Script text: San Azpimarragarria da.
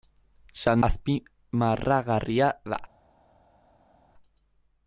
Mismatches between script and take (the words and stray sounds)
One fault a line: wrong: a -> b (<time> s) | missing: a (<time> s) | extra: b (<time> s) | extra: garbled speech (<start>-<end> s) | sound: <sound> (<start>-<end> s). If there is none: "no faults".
no faults